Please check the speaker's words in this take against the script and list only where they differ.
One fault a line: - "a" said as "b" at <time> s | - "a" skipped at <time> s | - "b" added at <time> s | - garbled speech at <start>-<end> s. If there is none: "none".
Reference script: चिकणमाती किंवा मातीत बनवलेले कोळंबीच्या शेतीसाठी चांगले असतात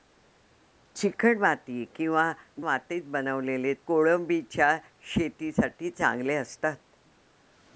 none